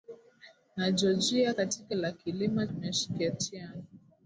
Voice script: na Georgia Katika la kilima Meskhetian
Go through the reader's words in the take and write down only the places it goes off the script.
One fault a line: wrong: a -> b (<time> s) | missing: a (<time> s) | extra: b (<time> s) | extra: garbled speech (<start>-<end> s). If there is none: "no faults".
no faults